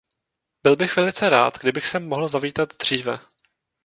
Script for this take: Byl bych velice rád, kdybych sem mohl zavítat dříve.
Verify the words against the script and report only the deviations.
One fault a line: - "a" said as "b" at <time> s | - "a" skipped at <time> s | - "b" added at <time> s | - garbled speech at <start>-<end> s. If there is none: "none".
none